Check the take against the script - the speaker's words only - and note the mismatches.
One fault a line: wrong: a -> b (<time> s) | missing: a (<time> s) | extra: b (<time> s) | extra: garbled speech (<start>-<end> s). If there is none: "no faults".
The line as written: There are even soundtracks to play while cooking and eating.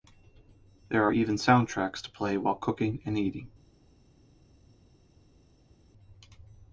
no faults